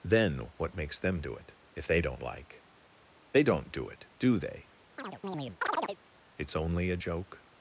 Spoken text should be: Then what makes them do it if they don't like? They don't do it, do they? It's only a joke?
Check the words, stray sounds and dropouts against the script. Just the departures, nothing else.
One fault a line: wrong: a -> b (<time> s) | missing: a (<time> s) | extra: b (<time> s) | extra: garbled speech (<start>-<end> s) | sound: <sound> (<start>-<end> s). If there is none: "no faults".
sound: chirp (5.0-6.0 s)